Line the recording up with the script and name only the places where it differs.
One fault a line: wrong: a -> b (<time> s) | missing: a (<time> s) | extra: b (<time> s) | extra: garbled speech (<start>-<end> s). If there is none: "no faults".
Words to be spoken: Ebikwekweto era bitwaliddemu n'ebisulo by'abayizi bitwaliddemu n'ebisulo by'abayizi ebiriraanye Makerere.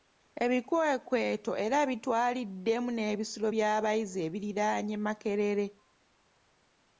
missing: bitwaliddemu n'ebisulo by'abayizi (4.2 s)